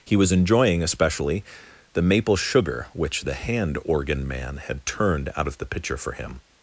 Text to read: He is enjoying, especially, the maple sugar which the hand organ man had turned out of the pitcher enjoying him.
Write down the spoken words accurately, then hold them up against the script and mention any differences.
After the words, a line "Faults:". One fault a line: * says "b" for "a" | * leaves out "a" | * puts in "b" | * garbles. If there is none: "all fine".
He was enjoying, especially, the maple sugar which the hand organ man had turned out of the pitcher for him.
Faults:
* says "was" for "is"
* says "for" for "enjoying"